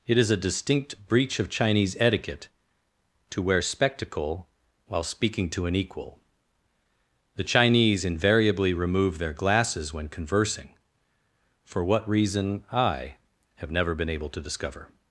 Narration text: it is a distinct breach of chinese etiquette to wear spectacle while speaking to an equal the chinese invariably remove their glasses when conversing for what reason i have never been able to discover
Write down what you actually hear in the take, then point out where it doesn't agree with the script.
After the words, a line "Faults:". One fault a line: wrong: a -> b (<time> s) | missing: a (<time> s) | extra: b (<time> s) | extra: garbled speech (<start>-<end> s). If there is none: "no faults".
it is a distinct breach of chinese etiquette to wear spectacle while speaking to an equal the chinese invariably remove their glasses when conversing for what reason i have never been able to discover
Faults:
no faults